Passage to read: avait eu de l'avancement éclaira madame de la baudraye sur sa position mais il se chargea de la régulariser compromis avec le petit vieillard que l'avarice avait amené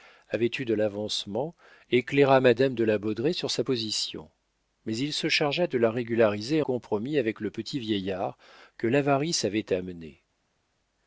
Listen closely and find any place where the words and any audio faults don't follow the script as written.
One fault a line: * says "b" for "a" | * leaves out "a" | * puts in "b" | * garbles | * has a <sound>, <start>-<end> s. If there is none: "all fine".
all fine